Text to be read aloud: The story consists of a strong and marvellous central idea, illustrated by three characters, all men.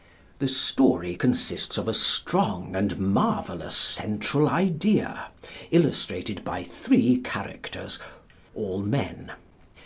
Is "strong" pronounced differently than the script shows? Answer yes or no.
no